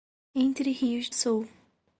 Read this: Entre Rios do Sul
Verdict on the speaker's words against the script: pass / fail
fail